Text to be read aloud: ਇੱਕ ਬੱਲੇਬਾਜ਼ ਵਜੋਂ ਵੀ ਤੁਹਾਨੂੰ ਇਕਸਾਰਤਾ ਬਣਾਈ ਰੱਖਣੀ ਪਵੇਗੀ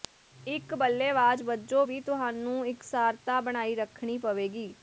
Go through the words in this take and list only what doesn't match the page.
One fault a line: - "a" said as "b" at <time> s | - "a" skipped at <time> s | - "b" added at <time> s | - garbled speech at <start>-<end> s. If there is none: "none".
none